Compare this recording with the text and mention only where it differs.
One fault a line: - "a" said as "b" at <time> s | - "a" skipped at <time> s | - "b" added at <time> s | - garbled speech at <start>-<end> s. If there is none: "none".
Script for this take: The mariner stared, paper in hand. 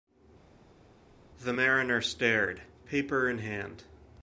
none